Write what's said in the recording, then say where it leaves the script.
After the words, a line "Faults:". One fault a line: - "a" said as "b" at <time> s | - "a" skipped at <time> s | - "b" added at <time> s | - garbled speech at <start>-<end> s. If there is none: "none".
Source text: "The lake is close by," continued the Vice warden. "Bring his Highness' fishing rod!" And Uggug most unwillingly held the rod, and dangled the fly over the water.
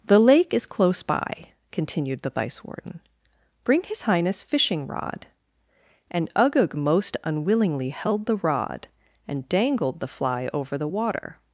"The lake is close by," continued the Vice warden. "Bring his Highness' fishing rod!" And Uggug most unwillingly held the rod, and dangled the fly over the water.
Faults:
none